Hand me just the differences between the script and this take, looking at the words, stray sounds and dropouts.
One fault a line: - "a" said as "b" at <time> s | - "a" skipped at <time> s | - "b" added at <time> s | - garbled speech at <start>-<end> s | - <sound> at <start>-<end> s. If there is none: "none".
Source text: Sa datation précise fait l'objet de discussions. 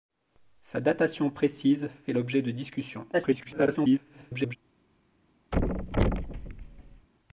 - garbled speech at 3.1-4.6 s
- thud at 5.5-7.1 s